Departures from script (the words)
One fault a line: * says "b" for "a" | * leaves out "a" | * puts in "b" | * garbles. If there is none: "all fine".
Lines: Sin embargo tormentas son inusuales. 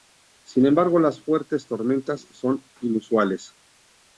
* puts in "las fuertes"